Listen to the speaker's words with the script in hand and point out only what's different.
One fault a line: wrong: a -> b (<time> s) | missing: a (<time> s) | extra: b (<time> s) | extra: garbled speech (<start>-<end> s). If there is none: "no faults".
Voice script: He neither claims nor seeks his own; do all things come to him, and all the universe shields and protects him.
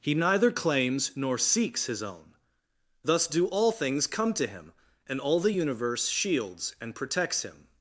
extra: thus (3.0 s)